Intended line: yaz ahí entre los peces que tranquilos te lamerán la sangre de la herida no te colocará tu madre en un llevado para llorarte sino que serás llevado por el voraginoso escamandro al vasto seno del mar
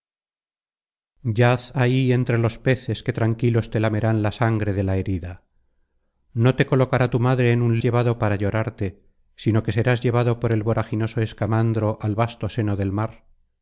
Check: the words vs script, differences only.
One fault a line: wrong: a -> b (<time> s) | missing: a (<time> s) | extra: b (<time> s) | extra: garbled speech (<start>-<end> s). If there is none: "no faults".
no faults